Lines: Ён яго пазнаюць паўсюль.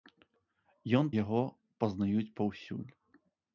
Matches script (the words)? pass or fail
pass